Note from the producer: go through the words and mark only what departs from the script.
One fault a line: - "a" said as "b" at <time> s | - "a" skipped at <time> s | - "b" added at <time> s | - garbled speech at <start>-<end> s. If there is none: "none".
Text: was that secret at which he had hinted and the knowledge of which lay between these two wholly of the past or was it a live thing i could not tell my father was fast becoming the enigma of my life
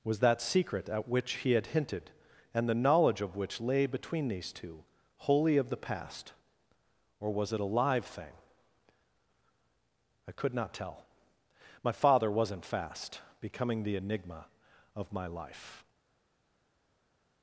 - "was" said as "wasn't" at 12.3 s